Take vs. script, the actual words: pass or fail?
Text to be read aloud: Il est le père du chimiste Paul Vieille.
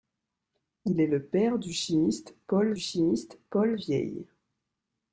fail